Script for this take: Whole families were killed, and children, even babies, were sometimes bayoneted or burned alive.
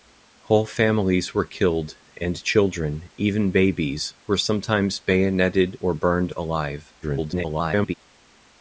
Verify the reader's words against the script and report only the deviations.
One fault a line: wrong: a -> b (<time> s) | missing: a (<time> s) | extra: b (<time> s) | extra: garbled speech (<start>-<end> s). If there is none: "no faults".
extra: garbled speech (7.0-7.9 s)